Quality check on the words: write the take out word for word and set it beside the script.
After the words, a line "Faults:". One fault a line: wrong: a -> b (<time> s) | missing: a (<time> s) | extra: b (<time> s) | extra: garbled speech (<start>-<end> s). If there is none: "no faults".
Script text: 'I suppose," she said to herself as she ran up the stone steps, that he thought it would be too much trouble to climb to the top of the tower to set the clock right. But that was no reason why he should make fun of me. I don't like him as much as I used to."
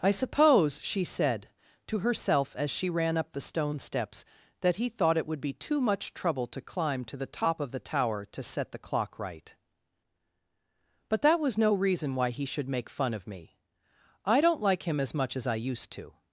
'I suppose," she said to herself as she ran up the stone steps, that he thought it would be too much trouble to climb to the top of the tower to set the clock right. But that was no reason why he should make fun of me. I don't like him as much as I used to."
Faults:
no faults